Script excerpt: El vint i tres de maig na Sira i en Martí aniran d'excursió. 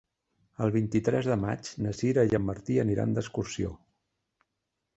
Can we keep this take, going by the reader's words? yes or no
yes